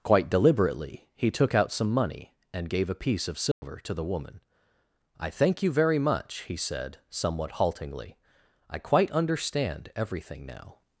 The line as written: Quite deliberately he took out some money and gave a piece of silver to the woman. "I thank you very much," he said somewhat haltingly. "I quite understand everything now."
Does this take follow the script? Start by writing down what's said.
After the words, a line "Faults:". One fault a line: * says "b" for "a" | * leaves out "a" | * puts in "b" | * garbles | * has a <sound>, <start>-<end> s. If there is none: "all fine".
Quite deliberately he took out some money and gave a piece of silver to the woman. "I thank you very much," he said somewhat haltingly. "I quite understand everything now."
Faults:
* has a dropout, 3.5-3.6 s